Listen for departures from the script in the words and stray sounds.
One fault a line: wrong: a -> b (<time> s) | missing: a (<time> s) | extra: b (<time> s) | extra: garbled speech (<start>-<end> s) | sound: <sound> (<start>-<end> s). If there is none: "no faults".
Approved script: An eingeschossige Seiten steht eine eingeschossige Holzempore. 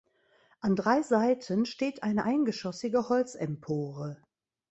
wrong: eingeschossige -> drei (0.8 s)